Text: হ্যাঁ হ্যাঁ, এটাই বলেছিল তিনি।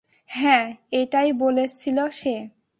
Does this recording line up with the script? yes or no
no